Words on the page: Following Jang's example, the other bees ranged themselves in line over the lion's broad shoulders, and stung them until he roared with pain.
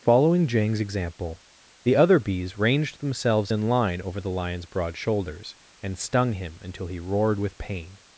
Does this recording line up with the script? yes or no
no